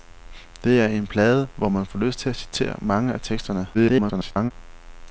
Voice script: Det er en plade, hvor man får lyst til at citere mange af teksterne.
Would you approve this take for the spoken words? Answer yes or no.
no